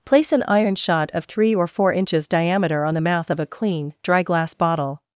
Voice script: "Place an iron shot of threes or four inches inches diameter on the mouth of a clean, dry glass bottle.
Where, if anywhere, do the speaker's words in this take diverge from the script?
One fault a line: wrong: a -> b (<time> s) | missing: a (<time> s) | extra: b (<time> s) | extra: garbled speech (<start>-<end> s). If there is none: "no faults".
wrong: threes -> three (1.2 s)
missing: inches (2.3 s)